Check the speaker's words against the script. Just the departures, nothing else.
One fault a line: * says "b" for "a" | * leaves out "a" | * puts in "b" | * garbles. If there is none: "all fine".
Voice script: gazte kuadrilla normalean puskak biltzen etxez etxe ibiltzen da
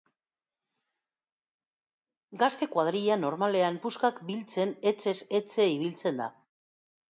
all fine